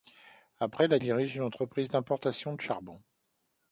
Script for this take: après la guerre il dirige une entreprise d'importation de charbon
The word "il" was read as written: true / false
false